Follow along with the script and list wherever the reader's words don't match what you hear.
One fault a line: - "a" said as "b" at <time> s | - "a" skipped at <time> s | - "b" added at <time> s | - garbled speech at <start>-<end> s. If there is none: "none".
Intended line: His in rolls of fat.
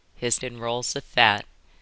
none